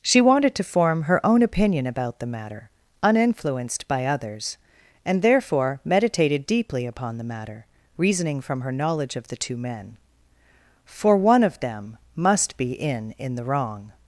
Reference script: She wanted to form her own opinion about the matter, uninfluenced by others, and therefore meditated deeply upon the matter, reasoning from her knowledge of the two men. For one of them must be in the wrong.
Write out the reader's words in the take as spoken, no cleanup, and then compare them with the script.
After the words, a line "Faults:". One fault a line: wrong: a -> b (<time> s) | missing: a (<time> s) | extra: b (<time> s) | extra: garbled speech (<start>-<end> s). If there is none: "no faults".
She wanted to form her own opinion about the matter, uninfluenced by others, and therefore meditated deeply upon the matter, reasoning from her knowledge of the two men. For one of them must be in in the wrong.
Faults:
extra: in (13.2 s)